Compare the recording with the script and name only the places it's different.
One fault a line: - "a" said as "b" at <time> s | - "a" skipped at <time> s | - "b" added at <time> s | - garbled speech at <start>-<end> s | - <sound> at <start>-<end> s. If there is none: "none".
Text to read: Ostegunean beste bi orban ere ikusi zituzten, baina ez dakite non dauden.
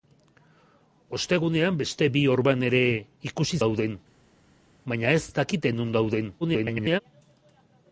- "zituzten" said as "dauden" at 3.6 s
- garbled speech at 6.4-7.0 s